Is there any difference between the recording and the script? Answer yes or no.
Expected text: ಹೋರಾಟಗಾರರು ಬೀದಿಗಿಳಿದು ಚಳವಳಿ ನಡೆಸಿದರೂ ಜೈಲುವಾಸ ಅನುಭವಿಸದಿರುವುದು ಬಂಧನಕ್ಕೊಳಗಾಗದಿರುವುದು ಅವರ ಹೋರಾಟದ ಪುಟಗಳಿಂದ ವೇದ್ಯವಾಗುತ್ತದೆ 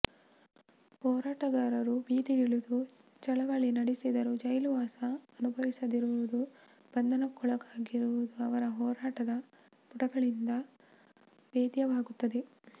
no